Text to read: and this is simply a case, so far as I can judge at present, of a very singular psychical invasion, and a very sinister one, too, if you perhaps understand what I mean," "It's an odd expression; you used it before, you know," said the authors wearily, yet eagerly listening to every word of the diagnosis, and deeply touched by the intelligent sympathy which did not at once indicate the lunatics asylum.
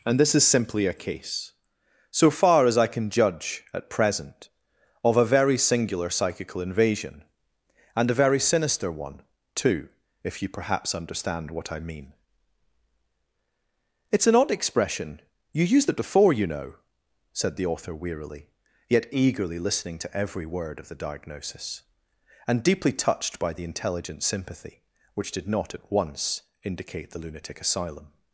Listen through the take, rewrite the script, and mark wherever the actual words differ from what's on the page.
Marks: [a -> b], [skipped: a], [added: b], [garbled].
and this is simply a case, so far as I can judge at present, of a very singular psychical invasion, and a very sinister one, too, if you perhaps understand what I mean," "It's an odd expression; you used it before, you know," said the [authors -> author] wearily, yet eagerly listening to every word of the diagnosis, and deeply touched by the intelligent sympathy which did not at once indicate the [lunatics -> lunatic] asylum.